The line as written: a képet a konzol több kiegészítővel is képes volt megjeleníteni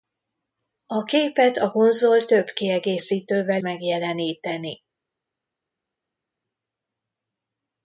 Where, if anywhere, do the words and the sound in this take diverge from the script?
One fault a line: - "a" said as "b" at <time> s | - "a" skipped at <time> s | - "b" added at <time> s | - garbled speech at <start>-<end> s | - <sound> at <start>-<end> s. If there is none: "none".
- "is képes volt" skipped at 3.6 s